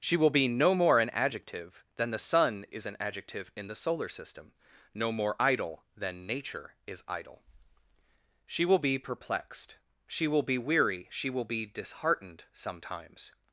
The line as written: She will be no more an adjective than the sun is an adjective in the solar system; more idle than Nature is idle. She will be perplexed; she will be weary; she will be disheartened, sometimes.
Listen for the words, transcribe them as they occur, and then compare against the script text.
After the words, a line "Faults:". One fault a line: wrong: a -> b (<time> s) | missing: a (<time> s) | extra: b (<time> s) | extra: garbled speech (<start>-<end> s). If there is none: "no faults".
She will be no more an adjective than the sun is an adjective in the solar system; no more idle than Nature is idle. She will be perplexed; she will be weary; she will be disheartened, sometimes.
Faults:
extra: no (5.0 s)